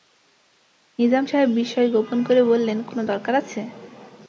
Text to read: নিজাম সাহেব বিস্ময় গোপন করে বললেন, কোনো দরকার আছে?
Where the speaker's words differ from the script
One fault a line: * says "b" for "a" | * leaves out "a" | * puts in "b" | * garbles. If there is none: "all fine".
all fine